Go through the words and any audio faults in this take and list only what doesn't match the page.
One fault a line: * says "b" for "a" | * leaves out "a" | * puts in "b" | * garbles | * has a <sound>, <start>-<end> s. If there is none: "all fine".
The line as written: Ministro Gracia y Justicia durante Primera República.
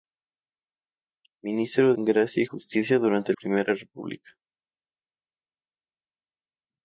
all fine